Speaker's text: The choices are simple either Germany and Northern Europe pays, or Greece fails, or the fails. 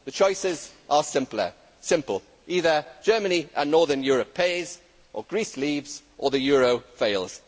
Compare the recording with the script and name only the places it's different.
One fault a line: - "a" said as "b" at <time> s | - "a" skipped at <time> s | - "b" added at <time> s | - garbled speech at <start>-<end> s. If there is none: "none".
- "fails" said as "leaves" at 5.6 s
- "euro" added at 6.4 s